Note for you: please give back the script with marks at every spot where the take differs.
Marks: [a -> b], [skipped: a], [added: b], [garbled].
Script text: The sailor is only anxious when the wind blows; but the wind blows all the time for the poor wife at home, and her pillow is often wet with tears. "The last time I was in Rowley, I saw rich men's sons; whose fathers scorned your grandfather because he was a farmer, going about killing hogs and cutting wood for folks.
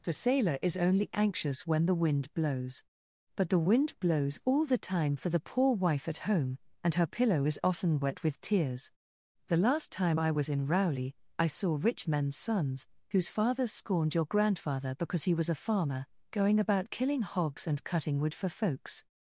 The sailor is only anxious when the wind blows; but the wind blows all the time for the poor wife at home, and her pillow is often wet with tears. "The last time I was in Rowley, I saw rich men's sons; whose fathers scorned your grandfather because he was a farmer, going about killing hogs and cutting wood for folks.